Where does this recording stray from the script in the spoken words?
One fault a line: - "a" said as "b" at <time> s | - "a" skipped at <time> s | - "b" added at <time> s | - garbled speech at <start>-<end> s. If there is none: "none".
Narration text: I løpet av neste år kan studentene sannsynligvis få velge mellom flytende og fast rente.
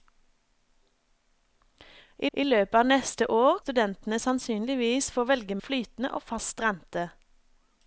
- "I" added at 2.3 s
- "kan" skipped at 3.6 s
- "mellom" skipped at 5.6 s